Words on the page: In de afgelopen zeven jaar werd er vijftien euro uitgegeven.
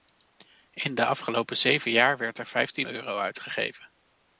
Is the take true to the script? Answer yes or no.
yes